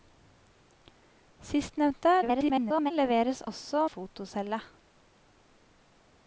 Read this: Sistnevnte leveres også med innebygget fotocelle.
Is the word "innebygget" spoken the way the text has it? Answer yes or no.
no